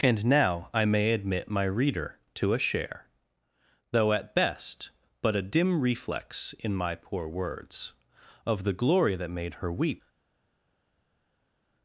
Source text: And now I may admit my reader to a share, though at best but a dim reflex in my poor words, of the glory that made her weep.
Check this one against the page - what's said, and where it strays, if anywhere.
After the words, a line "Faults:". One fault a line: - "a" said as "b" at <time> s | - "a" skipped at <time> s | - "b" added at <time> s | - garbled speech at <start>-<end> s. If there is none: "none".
And now I may admit my reader to a share, though at best but a dim reflex in my poor words, of the glory that made her weep.
Faults:
none